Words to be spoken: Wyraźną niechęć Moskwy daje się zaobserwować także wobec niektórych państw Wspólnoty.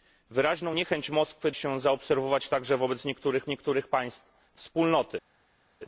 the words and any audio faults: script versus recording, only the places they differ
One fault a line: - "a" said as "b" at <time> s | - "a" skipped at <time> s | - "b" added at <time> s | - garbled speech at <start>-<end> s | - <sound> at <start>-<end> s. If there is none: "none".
- "daje" skipped at 1.5 s
- "niektórych" added at 3.5 s